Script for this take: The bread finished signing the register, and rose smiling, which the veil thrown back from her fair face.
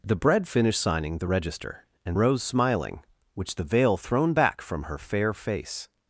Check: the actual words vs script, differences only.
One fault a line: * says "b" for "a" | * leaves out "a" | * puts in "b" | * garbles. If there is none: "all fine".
all fine